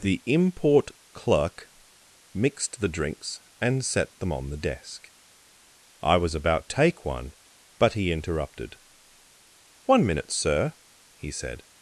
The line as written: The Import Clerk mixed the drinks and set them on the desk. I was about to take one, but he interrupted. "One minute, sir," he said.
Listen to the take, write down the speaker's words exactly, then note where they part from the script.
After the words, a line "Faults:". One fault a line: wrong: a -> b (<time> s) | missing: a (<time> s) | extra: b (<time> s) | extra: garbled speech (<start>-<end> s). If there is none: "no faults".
The Import Clerk mixed the drinks and set them on the desk. I was about take one, but he interrupted. "One minute, sir," he said.
Faults:
missing: to (6.7 s)